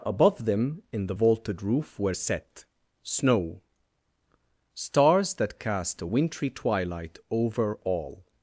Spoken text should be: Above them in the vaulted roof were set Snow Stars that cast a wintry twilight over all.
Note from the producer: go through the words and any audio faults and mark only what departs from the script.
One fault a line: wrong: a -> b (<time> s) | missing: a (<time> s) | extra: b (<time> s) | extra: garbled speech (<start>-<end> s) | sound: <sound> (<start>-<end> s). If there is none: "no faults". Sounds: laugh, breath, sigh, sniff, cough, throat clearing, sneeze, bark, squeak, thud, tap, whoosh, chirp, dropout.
no faults